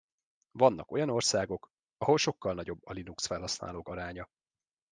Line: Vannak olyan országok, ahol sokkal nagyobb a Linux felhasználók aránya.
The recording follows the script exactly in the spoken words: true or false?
true